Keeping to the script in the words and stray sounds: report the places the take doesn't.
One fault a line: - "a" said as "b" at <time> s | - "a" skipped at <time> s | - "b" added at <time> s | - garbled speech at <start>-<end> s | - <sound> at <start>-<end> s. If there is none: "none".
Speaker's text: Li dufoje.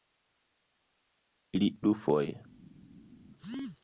none